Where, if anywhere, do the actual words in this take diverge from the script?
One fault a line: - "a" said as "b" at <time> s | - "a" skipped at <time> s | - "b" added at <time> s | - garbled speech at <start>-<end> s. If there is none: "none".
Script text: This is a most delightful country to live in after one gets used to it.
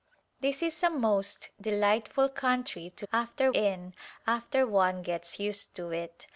- "live" said as "after" at 3.1 s